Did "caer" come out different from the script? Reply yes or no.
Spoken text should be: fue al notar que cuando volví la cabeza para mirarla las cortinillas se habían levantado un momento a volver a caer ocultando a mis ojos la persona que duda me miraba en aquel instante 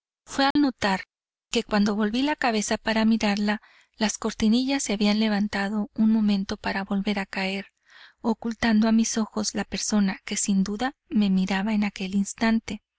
no